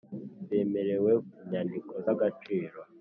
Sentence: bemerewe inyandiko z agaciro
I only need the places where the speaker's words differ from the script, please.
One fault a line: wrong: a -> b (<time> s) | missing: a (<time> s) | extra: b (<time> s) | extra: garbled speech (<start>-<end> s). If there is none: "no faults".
no faults